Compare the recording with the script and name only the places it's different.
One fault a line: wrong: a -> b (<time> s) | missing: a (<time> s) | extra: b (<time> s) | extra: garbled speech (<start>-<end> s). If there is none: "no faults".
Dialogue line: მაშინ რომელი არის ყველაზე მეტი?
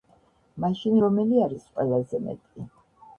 no faults